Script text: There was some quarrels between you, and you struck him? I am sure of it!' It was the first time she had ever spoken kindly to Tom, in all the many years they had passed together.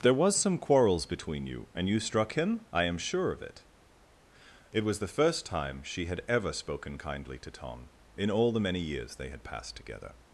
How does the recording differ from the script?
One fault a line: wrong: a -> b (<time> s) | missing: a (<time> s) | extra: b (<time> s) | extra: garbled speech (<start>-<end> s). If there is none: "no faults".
no faults